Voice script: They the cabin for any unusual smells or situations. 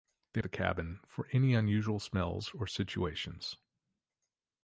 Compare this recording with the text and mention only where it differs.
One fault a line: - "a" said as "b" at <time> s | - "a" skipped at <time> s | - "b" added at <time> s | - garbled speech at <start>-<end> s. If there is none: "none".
none